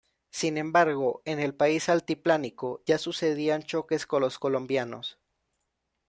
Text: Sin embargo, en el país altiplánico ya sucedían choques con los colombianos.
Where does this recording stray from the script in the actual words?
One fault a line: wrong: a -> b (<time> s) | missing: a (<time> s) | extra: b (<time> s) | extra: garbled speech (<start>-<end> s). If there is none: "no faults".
no faults